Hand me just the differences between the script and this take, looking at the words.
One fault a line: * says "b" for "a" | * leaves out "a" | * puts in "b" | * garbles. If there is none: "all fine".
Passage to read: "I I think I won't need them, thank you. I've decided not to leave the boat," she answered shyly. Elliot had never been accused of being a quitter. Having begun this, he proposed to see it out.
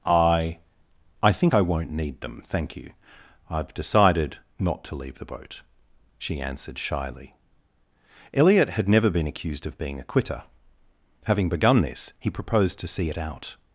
all fine